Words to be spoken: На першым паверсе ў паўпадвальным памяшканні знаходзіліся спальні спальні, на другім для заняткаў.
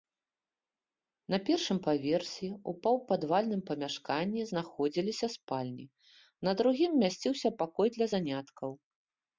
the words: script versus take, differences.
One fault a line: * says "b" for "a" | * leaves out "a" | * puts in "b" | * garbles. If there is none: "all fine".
* leaves out "спальні"
* puts in "месціўся пакой"